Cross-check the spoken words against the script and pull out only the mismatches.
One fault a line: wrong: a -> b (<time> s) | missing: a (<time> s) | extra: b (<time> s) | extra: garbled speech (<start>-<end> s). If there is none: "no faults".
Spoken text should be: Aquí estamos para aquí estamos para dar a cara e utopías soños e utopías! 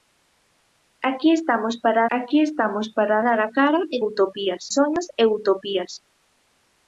no faults